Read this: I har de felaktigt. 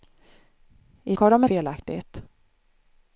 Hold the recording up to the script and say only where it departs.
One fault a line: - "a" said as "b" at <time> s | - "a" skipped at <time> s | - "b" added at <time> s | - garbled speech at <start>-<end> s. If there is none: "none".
none